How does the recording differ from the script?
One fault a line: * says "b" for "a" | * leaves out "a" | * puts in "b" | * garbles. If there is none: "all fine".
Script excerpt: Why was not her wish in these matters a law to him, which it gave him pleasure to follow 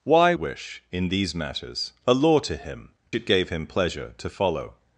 * leaves out "was not her"
* leaves out "which"